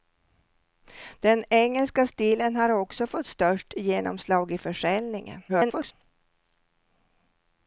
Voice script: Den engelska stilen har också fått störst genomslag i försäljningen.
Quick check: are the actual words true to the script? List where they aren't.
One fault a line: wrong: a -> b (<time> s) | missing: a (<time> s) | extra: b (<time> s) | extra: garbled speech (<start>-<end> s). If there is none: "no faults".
extra: garbled speech (5.5-5.9 s)